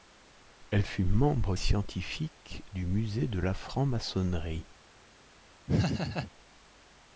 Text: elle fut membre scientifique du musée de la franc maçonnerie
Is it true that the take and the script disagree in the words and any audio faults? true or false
true